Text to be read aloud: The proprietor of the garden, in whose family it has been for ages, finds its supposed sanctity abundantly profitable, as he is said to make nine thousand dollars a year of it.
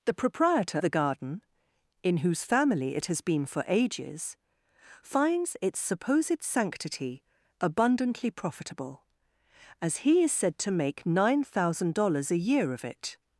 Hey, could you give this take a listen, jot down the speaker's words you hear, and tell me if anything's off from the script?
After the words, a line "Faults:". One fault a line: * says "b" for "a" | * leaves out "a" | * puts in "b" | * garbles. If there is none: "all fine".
The proprietor the garden, in whose family it has been for ages, finds its supposed sanctity abundantly profitable, as he is said to make nine thousand dollars a year of it.
Faults:
* leaves out "of"